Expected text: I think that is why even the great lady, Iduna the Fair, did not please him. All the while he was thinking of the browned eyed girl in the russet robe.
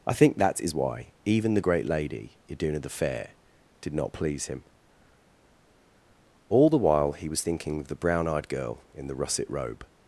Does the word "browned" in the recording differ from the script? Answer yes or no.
yes